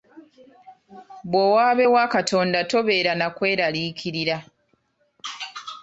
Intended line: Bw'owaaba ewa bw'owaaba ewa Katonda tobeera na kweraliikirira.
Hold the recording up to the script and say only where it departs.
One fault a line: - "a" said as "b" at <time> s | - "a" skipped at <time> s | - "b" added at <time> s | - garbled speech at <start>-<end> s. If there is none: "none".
- "bw'owaaba ewa" skipped at 2.0 s